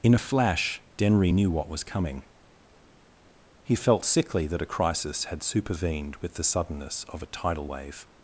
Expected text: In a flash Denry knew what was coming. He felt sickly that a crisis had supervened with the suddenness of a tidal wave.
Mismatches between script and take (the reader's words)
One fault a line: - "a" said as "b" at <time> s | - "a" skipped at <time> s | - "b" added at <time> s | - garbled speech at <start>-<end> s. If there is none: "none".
none